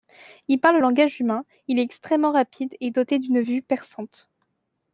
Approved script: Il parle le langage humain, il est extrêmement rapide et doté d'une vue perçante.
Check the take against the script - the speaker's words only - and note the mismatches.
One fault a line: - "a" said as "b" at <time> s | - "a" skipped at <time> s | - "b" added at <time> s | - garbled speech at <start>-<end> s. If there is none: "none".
none